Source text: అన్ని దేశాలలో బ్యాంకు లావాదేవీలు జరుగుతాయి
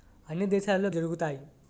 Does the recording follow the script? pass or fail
fail